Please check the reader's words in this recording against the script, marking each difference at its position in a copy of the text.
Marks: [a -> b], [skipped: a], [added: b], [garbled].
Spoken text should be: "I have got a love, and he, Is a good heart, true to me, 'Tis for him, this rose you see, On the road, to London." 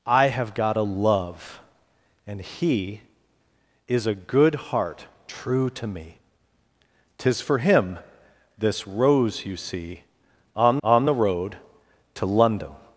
"I have got a love, and he, Is a good heart, true to me, 'Tis for him, this rose you see, On [added: On] the road, to London."